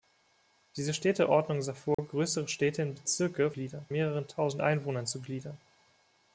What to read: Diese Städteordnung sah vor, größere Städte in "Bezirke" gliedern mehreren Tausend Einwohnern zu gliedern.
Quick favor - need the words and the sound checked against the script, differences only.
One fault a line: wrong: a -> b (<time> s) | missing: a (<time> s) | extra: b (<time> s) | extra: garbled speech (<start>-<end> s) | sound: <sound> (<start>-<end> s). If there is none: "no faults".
sound: dropout (1.9-2.0 s)